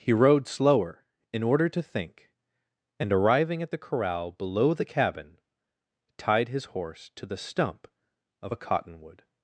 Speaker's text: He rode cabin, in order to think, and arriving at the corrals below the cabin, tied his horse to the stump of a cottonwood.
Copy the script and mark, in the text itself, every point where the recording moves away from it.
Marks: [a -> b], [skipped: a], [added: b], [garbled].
He rode [cabin, -> slower] in order to think, and arriving at the [corrals -> corral] below the cabin, tied his horse to the stump of a cottonwood.